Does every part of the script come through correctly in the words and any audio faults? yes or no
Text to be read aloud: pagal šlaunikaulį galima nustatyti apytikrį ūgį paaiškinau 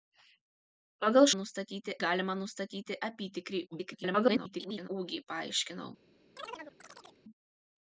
no